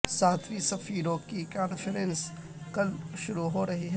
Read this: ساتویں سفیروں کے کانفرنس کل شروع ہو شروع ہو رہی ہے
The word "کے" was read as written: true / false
false